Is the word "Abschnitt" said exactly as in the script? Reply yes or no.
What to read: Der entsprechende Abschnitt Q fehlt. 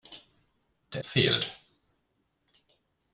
no